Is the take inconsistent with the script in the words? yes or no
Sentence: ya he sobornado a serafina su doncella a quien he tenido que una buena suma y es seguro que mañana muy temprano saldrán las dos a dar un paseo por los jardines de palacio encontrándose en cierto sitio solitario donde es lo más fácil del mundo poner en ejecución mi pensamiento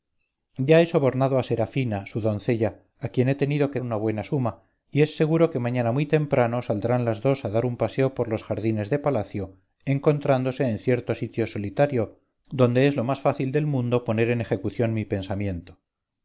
no